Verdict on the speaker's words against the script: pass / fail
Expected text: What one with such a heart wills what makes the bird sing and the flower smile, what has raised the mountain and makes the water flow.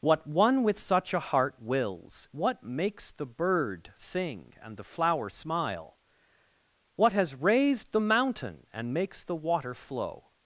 pass